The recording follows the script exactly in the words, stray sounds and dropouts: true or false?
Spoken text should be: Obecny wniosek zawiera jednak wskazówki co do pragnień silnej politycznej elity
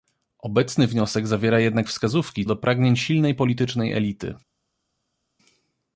false